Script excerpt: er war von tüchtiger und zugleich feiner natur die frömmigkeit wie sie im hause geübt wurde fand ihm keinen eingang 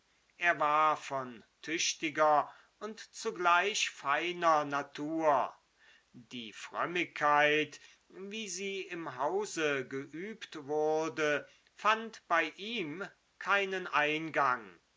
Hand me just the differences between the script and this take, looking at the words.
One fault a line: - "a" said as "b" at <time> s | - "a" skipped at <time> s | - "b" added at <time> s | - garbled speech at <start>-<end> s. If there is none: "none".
- "bei" added at 12.3 s